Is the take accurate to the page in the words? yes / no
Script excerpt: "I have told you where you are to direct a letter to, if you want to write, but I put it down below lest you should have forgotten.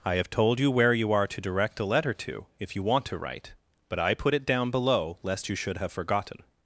yes